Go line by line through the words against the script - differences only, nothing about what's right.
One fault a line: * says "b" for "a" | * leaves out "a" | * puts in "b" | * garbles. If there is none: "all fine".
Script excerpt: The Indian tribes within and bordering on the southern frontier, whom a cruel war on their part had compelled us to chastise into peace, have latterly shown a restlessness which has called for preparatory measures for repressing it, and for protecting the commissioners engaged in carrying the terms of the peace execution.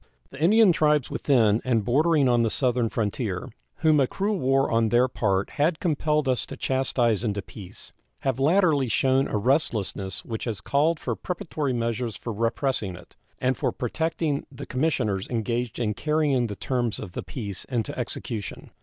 * puts in "into"